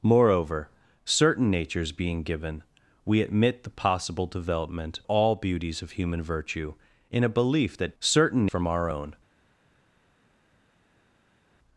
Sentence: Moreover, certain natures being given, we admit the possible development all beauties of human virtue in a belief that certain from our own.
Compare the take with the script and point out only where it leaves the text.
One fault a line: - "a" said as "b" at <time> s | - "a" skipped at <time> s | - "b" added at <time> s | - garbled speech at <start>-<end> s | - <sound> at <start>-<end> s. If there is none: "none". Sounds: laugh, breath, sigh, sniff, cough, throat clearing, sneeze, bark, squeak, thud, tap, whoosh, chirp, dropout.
none